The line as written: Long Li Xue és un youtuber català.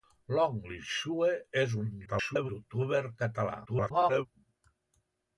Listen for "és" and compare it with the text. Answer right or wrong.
right